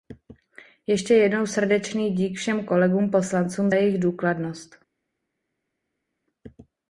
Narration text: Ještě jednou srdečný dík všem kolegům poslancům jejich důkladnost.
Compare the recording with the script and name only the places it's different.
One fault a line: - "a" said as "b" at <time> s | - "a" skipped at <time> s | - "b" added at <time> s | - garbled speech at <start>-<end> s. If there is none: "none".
none